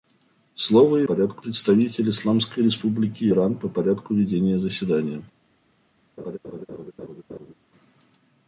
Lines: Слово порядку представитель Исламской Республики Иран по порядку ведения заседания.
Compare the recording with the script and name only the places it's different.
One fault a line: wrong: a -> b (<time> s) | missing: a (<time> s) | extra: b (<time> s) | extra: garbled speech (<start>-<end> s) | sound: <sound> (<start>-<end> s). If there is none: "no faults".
sound: laugh (6.2-7.5 s)